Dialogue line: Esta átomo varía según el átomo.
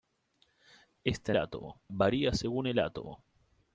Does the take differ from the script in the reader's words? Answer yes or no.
no